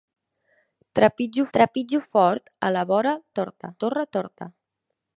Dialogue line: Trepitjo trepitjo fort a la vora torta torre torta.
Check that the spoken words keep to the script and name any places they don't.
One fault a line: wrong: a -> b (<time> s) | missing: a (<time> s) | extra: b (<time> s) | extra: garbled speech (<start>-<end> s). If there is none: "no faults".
no faults